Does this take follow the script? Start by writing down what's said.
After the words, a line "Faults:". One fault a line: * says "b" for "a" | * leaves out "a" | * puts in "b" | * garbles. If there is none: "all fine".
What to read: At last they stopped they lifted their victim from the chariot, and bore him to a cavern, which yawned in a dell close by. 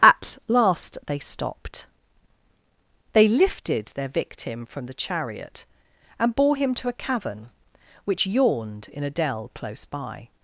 At last they stopped they lifted their victim from the chariot, and bore him to a cavern, which yawned in a dell close by.
Faults:
all fine